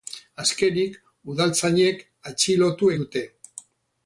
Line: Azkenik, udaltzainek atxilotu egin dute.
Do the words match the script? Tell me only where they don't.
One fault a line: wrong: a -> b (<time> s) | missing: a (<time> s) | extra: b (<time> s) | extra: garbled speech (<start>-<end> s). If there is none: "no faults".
missing: egin (2.9 s)